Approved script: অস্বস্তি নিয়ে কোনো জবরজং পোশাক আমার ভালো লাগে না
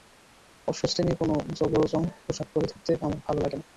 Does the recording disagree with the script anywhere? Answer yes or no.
yes